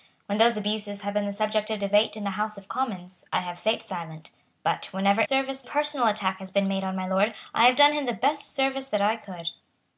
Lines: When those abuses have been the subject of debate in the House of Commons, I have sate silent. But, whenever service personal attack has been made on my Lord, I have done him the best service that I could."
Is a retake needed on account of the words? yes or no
no